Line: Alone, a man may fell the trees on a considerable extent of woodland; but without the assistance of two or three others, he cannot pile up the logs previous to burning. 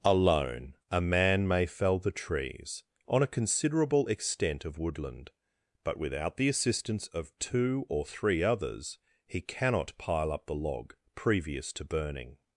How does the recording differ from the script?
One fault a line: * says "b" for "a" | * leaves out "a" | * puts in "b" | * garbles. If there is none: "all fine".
* says "log" for "logs"